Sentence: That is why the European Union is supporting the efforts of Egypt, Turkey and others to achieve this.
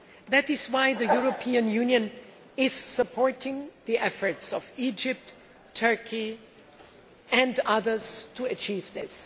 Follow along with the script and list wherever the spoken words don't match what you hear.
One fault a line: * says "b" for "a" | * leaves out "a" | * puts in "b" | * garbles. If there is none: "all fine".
all fine